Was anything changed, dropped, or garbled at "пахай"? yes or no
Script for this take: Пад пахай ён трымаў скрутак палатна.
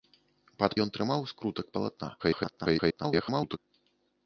yes